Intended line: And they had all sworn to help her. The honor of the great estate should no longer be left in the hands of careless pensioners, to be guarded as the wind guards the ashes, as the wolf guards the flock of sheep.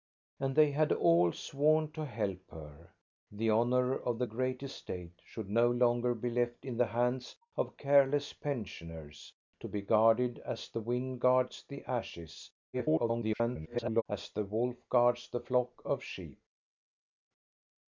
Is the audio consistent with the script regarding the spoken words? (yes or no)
no